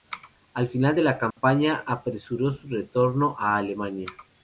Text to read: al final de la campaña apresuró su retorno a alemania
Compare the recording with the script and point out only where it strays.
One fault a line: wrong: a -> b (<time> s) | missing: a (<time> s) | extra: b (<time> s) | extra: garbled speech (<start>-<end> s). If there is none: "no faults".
no faults